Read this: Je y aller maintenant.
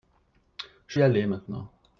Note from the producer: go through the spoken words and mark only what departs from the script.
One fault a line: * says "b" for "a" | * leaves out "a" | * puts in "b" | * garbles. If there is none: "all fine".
all fine